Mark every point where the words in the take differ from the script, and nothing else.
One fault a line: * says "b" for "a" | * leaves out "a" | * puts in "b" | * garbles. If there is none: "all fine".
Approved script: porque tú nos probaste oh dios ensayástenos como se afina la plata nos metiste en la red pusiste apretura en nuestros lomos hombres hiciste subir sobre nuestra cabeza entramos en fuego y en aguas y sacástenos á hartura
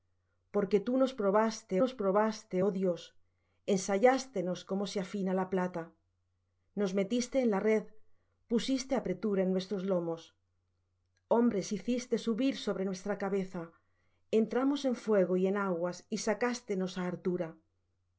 * puts in "nos probaste"